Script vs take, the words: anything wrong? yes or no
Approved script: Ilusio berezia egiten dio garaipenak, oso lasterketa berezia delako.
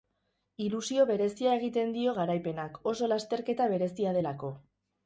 no